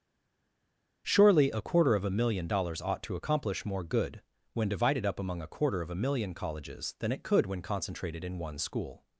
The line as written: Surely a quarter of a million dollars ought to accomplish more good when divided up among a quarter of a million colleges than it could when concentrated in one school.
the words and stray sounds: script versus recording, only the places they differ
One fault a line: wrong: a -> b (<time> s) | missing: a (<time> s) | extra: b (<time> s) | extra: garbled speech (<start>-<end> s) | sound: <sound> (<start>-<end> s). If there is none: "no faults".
no faults